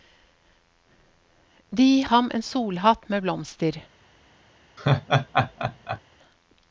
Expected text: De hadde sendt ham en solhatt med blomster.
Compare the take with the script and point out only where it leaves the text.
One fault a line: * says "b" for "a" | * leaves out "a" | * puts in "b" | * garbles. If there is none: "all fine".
* leaves out "hadde sendt"